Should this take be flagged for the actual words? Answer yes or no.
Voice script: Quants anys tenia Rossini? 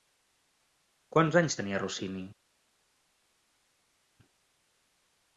no